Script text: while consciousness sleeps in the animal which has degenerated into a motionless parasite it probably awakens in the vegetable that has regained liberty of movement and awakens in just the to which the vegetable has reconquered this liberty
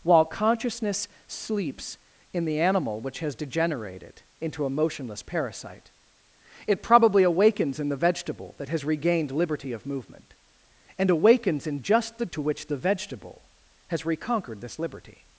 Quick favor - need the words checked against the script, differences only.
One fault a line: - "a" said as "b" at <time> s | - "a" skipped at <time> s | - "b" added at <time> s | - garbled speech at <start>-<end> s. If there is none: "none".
none